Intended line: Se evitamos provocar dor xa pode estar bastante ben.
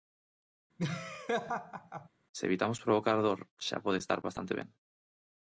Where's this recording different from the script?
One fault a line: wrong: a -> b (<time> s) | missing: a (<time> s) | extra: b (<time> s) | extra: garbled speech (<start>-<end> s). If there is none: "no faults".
no faults